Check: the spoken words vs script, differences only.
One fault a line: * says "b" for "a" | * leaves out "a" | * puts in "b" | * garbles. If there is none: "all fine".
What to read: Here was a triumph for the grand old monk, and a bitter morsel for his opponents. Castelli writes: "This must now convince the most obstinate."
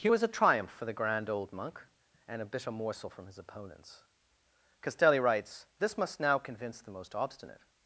* says "from" for "for"